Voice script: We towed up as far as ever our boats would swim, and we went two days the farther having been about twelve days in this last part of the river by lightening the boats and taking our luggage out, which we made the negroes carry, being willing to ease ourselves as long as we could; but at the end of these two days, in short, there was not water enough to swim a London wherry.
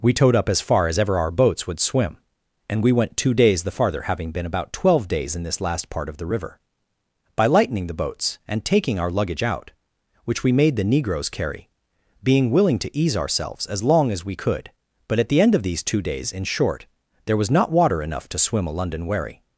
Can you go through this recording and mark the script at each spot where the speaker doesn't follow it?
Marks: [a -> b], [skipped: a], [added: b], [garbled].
We towed up as far as ever our boats would swim, and we went two days the farther having been about twelve days in this last part of the river by lightening the boats and taking our luggage out, which we made the negroes carry, being willing to ease ourselves as long as we could; but at the end of these two days, in short, there was not water enough to swim a London wherry.